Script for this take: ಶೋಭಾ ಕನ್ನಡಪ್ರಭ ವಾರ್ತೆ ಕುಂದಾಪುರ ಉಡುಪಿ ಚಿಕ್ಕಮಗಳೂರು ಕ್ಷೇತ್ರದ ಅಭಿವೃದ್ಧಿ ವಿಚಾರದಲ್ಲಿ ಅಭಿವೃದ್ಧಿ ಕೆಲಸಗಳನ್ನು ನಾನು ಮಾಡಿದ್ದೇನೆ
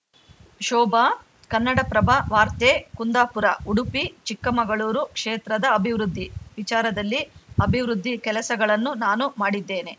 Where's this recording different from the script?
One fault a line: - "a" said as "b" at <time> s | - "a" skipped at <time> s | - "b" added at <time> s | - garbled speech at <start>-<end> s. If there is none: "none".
none